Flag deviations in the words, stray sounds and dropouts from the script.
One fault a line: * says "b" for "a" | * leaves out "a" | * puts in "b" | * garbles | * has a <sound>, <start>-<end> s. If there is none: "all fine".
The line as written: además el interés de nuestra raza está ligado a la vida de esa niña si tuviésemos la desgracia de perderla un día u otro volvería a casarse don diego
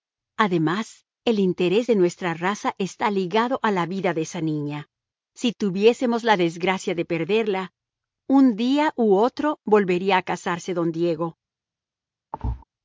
* has a thud, 12.3-12.6 s